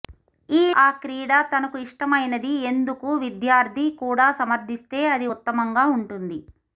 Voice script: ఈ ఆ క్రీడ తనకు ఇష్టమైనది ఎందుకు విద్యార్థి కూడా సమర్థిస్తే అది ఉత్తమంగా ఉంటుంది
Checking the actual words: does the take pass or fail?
pass